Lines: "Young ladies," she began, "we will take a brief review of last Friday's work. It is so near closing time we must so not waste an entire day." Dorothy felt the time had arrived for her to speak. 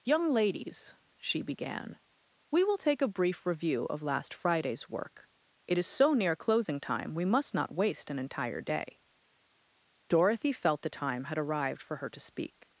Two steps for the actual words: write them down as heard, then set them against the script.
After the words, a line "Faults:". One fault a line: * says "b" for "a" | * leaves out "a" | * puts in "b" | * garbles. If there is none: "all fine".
"Young ladies," she began, "we will take a brief review of last Friday's work. It is so near closing time we must not waste an entire day." Dorothy felt the time had arrived for her to speak.
Faults:
* leaves out "so"